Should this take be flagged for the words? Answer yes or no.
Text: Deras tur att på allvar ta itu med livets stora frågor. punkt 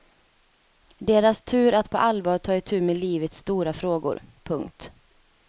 no